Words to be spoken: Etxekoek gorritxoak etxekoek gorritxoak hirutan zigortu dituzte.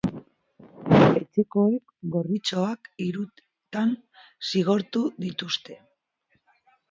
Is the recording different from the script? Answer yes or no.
yes